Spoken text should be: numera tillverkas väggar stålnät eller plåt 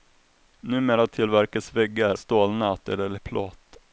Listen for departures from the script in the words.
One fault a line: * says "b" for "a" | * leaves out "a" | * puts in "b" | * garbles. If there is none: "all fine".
all fine